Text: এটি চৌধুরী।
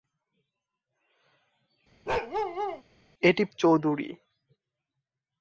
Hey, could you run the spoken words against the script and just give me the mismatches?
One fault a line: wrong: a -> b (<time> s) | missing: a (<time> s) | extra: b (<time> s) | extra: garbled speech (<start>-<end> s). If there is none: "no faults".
no faults